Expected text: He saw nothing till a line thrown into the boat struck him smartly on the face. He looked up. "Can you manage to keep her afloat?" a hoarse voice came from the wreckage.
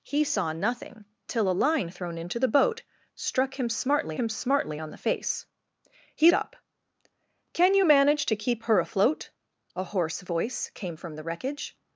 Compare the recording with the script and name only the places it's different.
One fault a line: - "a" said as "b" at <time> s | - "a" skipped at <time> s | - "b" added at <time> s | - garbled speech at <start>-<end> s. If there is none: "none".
- "him smartly" added at 4.2 s
- "looked" skipped at 6.3 s